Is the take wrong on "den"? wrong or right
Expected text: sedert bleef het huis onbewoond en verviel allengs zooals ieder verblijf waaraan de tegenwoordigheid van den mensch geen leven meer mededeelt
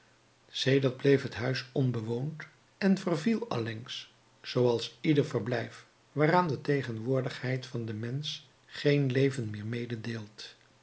right